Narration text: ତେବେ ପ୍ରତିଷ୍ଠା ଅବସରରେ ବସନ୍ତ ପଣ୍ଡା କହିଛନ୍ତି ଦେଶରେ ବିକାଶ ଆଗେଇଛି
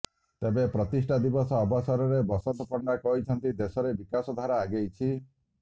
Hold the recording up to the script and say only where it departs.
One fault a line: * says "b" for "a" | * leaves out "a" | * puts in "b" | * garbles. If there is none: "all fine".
* puts in "ଦିବସ"
* puts in "ଧାରା"